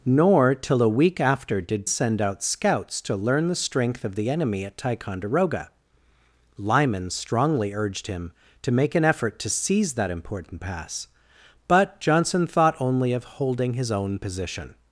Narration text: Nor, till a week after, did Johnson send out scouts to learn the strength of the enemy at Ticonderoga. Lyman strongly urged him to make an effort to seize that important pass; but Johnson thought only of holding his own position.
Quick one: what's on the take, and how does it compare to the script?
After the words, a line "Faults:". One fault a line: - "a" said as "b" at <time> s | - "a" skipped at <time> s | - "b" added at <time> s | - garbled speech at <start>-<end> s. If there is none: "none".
Nor, till a week after, did Send out scouts to learn the strength of the enemy at Ticonderoga. Lyman strongly urged him to make an effort to seize that important pass; but Johnson thought only of holding his own position.
Faults:
- "Johnson" skipped at 1.9 s